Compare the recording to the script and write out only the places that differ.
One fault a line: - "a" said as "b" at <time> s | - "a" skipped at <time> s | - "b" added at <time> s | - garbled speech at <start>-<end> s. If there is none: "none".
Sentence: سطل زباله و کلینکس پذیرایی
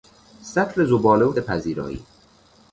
- "کلینکس" skipped at 1.3 s